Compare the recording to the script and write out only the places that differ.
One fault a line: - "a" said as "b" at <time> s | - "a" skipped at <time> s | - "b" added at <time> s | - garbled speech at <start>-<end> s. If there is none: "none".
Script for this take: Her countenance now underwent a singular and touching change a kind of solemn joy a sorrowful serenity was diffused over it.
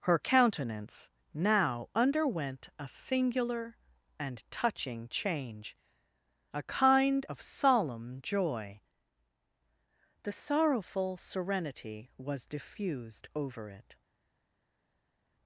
- "a" said as "the" at 10.3 s